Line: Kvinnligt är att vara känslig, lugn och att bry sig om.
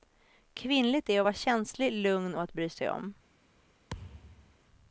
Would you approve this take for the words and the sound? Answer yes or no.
no